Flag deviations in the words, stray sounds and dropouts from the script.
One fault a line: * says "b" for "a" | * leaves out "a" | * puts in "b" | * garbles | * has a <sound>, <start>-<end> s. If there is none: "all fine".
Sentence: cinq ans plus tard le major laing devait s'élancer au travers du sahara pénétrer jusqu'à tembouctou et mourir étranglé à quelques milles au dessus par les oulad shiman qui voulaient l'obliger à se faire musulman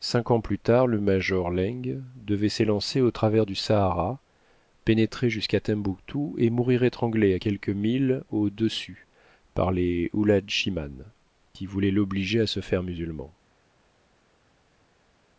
all fine